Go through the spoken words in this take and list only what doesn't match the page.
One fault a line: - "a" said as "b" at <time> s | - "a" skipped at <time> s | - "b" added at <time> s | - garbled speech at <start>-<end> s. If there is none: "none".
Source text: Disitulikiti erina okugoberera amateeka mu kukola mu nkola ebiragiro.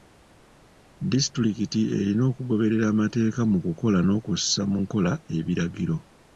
- "n'okussa" added at 4.0 s